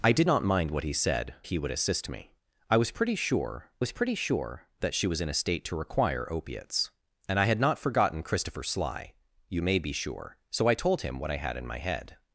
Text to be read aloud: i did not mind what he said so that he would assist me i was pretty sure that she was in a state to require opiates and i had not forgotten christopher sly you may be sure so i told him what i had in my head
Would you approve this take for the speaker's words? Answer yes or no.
no